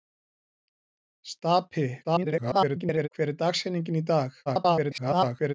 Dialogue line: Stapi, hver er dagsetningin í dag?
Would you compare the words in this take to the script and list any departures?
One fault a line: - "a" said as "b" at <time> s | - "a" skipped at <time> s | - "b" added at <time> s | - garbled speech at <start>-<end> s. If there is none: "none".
- garbled speech at 2.0-3.1 s
- garbled speech at 4.5-5.5 s